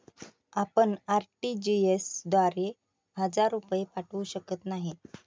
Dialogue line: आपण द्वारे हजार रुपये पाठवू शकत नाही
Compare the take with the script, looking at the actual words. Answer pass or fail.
fail